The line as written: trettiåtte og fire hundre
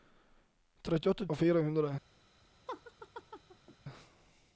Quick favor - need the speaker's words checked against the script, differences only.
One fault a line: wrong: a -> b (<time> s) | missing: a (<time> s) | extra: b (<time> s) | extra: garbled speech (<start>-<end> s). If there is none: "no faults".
no faults